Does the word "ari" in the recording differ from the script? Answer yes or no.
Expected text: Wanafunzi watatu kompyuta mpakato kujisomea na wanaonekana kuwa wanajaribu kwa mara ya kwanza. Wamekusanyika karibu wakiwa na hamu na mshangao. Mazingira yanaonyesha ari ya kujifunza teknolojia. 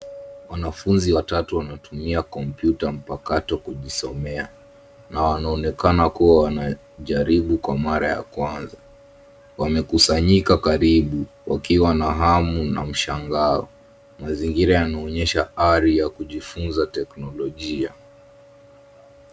no